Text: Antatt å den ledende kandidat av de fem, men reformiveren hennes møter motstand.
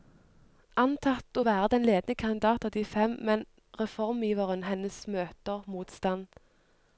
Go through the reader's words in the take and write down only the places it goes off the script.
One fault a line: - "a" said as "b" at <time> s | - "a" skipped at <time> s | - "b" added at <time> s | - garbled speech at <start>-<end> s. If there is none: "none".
- "være" added at 1.5 s